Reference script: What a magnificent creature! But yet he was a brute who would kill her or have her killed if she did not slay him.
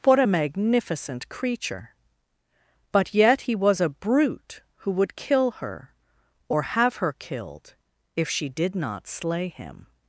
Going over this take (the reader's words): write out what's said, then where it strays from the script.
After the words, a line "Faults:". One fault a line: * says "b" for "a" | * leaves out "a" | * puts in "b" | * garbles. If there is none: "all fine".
What a magnificent creature! But yet he was a brute who would kill her or have her killed if she did not slay him.
Faults:
all fine